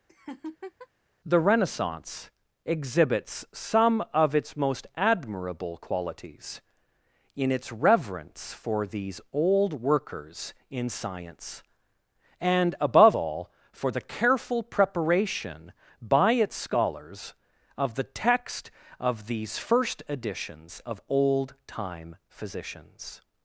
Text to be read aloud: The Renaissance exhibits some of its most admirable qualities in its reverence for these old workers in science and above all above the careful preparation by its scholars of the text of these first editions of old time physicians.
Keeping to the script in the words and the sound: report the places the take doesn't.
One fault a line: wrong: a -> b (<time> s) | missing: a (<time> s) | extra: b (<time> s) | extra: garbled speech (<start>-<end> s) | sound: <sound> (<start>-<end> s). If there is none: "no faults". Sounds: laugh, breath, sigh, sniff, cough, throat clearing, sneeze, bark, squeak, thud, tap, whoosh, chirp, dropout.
sound: laugh (0.1-0.9 s)
wrong: above -> for (13.7 s)